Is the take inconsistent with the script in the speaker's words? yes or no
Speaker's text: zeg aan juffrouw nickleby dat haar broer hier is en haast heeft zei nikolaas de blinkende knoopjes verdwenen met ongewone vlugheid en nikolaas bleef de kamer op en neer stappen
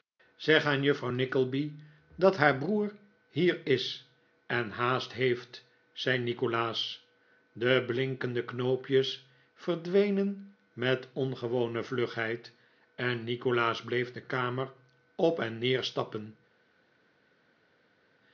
no